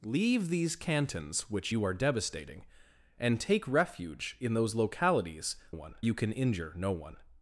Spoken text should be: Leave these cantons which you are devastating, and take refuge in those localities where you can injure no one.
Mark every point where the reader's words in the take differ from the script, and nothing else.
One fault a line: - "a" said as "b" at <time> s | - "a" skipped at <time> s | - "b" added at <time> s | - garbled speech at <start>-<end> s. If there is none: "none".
- "where" said as "one" at 5.7 s